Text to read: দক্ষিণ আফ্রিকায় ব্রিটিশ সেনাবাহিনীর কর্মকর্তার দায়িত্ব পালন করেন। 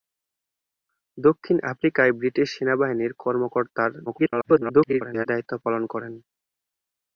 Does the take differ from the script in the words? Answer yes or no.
yes